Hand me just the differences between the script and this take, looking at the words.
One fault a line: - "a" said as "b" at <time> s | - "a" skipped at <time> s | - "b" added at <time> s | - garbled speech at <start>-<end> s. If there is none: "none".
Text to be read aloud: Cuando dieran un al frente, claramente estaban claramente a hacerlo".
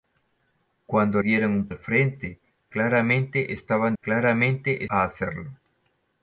none